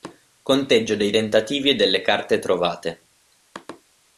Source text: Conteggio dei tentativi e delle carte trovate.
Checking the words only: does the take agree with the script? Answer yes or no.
yes